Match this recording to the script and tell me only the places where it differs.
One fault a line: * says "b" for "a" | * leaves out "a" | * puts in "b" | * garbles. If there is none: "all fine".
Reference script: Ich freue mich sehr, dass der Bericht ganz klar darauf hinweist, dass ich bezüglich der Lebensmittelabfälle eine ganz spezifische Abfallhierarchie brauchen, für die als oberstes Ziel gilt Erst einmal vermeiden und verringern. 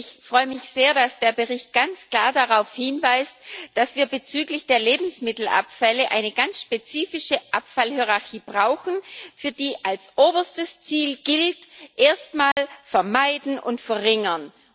* says "wir" for "ich"